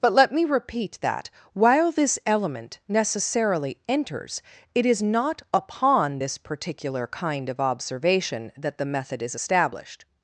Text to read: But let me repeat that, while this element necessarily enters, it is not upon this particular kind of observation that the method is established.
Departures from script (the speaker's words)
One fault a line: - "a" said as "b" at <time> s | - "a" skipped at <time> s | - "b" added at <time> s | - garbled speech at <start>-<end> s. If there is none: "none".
none